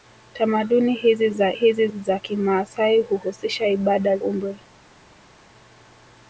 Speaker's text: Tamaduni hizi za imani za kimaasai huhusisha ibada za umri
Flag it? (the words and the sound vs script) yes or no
yes